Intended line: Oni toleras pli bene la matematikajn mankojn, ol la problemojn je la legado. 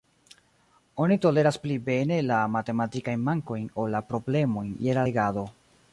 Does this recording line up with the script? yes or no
yes